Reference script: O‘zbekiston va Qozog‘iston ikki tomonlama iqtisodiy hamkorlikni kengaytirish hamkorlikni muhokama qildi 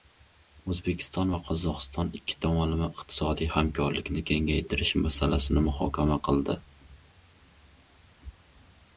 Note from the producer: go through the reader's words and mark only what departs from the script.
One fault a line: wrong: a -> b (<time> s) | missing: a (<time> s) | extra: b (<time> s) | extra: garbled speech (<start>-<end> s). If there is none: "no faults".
wrong: hamkorlikni -> masalasini (5.1 s)